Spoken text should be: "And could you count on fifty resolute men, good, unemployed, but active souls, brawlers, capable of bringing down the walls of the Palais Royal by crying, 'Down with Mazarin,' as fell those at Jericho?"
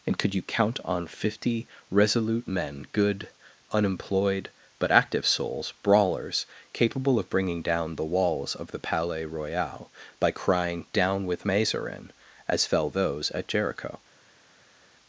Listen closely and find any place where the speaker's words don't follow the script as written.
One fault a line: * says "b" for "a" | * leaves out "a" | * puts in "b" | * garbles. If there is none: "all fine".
all fine